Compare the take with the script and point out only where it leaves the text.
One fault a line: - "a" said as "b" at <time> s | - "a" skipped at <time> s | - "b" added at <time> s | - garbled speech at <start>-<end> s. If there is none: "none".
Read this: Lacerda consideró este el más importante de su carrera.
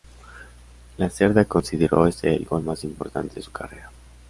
- "gol" added at 2.4 s